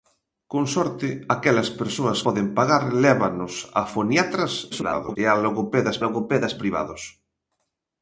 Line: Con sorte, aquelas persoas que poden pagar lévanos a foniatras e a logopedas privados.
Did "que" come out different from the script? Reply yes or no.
yes